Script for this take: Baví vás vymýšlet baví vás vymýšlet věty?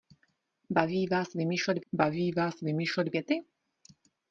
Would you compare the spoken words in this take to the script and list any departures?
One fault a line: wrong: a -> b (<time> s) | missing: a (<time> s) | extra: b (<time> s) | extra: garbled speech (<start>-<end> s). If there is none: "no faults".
no faults